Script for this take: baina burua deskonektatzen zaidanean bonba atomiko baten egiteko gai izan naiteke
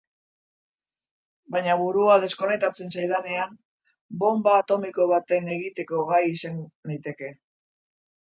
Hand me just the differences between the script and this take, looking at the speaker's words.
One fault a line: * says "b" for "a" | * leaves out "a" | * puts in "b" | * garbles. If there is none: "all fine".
all fine